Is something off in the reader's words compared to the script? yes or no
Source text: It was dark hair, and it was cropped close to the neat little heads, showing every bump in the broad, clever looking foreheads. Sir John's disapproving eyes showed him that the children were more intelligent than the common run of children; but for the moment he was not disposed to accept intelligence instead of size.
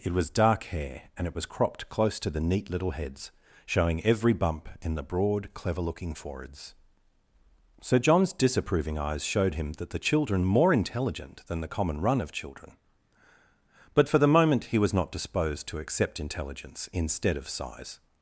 yes